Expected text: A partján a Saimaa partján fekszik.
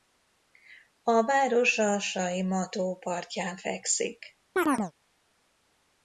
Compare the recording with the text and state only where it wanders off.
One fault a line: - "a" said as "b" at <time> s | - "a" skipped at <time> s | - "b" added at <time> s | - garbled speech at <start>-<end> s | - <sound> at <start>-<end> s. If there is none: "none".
- "partján" said as "város" at 1.2 s
- "tó" added at 2.7 s
- chirp at 4.6-4.9 s